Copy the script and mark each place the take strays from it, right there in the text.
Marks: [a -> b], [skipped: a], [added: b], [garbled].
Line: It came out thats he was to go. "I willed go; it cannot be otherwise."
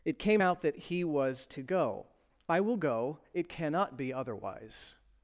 It came out [thats -> that] he was to go. "I [willed -> will] go; it cannot be otherwise."